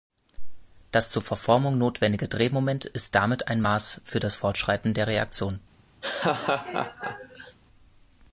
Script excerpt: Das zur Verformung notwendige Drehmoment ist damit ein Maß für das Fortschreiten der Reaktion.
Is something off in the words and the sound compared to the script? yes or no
yes